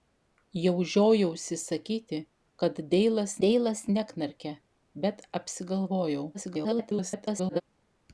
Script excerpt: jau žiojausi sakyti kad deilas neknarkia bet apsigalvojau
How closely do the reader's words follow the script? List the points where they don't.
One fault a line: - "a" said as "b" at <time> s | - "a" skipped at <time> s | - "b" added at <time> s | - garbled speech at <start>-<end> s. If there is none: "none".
- "deilas" added at 3.4 s
- garbled speech at 6.3-7.6 s